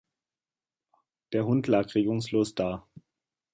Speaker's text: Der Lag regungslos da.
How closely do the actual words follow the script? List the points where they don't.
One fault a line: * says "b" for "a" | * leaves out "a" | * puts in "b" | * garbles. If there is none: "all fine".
* puts in "Hund"